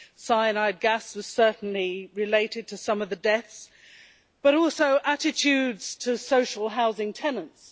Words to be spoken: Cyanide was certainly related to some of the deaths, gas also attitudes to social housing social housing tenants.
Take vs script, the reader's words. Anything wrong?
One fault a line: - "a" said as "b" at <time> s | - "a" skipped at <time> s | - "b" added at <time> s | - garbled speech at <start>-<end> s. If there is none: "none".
- "gas" added at 0.8 s
- "gas" said as "but" at 4.4 s
- "social housing" skipped at 7.1 s